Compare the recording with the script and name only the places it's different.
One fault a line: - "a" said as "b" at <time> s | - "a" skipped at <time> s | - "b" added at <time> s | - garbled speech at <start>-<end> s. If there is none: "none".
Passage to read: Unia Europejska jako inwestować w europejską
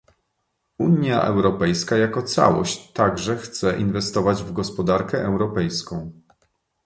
- "całość także chce" added at 2.2 s
- "gospodarkę" added at 4.5 s